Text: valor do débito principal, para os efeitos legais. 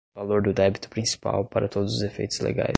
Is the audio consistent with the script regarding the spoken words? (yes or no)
no